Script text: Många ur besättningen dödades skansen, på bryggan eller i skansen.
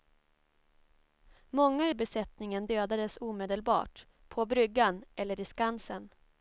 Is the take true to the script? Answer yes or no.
no